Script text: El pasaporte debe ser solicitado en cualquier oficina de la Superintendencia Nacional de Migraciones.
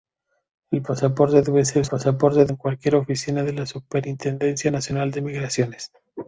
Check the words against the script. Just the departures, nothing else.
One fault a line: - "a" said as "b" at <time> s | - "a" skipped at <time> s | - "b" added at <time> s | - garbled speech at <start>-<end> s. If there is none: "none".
- "solicitado" said as "pasaporte" at 1.8 s